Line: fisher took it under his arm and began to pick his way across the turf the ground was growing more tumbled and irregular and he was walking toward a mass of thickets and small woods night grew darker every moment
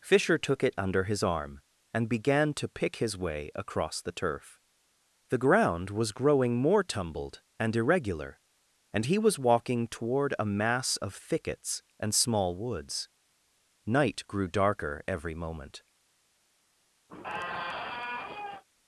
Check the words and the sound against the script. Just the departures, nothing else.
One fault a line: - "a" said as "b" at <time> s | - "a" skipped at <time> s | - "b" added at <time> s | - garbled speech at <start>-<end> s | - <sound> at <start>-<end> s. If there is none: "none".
- squeak at 17.1-18.6 s